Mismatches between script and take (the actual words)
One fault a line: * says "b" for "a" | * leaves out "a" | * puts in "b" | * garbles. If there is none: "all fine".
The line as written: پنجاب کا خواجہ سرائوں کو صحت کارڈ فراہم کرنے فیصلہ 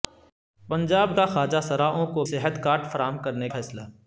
all fine